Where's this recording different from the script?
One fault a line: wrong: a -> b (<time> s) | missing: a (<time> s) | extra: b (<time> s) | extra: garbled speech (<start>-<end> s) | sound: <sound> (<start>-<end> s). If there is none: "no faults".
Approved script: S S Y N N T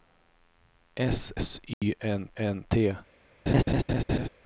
sound: dropout (1.7-1.8 s)
sound: laugh (3.5-4.3 s)